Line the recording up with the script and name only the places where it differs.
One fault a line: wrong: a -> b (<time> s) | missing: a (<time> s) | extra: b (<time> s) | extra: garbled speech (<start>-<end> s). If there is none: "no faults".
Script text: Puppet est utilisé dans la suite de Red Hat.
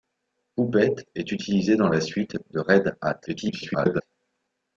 extra: garbled speech (3.3-4.0 s)